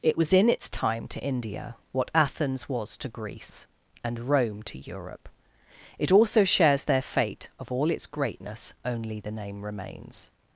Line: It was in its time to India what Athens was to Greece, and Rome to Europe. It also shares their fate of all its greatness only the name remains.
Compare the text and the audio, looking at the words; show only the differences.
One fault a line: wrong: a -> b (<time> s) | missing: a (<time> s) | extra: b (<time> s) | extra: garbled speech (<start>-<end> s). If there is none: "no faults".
no faults